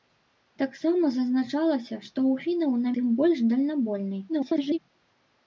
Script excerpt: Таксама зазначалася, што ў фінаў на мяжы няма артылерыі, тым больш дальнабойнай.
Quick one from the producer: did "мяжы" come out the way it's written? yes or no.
no